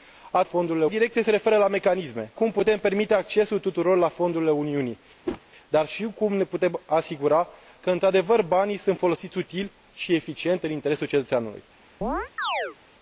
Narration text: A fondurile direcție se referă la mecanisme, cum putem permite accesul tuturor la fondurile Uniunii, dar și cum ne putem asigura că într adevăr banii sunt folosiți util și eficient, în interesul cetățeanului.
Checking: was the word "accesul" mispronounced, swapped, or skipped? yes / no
no